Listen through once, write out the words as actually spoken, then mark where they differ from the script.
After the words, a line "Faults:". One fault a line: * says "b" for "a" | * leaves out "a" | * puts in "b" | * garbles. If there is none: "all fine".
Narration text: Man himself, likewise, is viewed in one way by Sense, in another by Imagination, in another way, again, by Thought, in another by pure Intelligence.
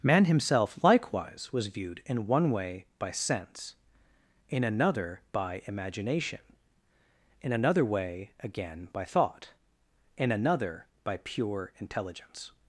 Man himself, likewise, was viewed in one way by Sense, in another by Imagination, in another way, again, by Thought, in another by pure Intelligence.
Faults:
* says "was" for "is"